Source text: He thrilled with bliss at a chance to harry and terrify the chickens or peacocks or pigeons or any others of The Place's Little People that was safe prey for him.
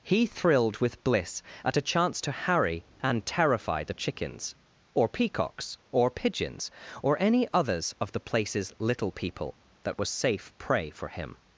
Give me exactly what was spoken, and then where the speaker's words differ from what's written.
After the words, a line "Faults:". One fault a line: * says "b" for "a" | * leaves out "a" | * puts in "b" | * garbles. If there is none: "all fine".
He thrilled with bliss at a chance to harry and terrify the chickens or peacocks or pigeons or any others of The Place's Little People that was safe prey for him.
Faults:
all fine